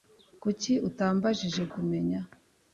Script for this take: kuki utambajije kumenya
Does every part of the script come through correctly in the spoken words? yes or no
yes